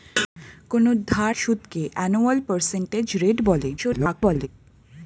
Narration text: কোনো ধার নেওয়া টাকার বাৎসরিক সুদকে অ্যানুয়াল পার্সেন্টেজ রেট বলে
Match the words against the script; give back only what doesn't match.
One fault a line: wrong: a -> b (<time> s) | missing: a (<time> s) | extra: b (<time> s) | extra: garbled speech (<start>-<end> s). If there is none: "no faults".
missing: নেওয়া টাকার বাৎসরিক (1.3 s)
extra: garbled speech (3.8-4.5 s)